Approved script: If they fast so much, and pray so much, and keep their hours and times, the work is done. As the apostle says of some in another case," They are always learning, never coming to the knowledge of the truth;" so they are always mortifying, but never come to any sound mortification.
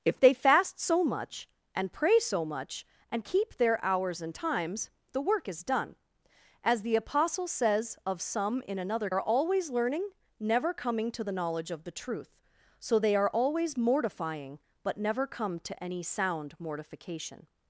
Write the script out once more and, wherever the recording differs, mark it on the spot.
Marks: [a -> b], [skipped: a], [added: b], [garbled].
If they fast so much, and pray so much, and keep their hours and times, the work is done. As the apostle says of some in another [skipped: case," They] are always learning, never coming to the knowledge of the truth;" so they are always mortifying, but never come to any sound mortification.